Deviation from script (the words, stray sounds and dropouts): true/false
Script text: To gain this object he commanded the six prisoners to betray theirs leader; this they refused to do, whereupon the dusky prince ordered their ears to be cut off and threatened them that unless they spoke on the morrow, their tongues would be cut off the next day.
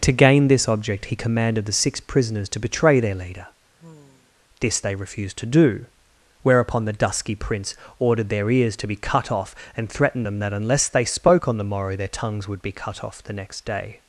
true